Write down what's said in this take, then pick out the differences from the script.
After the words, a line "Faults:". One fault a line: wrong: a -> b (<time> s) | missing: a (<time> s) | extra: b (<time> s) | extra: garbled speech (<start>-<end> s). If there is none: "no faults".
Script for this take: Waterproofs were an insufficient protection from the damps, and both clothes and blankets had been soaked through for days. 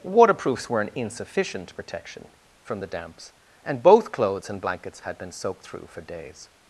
Waterproofs were an insufficient protection from the damps, and both clothes and blankets had been soaked through for days.
Faults:
no faults